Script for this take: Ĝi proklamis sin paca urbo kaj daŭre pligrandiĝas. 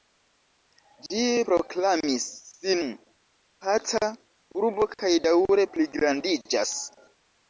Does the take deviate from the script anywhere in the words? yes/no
no